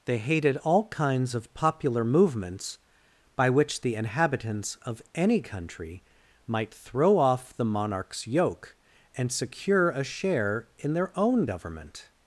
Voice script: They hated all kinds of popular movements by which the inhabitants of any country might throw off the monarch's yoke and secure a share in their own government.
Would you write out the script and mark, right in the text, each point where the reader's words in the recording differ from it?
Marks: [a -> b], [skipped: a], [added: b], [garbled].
They hated all kinds of popular movements by which the inhabitants of any country might throw off the monarch's yoke and secure a share in their own government.